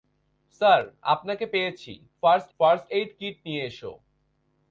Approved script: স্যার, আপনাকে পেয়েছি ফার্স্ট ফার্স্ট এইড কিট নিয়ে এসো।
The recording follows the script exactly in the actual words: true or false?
true